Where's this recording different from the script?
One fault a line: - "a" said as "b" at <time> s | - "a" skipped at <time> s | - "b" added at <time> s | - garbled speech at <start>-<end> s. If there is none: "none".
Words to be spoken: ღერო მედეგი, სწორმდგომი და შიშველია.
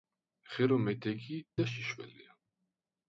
- "სწორმდგომი" skipped at 1.4 s